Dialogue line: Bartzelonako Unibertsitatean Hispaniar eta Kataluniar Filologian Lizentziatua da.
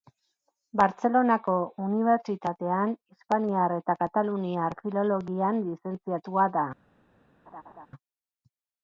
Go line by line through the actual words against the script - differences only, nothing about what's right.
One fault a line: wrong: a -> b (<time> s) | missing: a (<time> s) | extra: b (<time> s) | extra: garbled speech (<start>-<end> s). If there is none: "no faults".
no faults